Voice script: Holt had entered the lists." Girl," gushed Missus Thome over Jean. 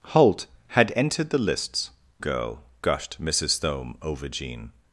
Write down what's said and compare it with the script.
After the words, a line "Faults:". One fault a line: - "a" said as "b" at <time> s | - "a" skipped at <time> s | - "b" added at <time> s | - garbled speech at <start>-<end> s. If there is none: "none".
Holt had entered the lists." Girl," gushed Missus Thome over Jean.
Faults:
none